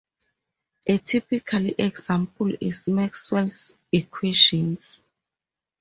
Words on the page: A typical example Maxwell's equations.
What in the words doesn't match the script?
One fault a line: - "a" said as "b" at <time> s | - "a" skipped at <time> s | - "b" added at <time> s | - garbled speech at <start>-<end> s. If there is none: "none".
- "is" added at 2.6 s